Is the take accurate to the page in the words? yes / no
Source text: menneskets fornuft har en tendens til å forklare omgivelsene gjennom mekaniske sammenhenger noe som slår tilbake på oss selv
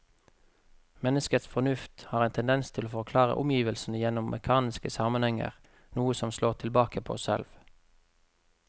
yes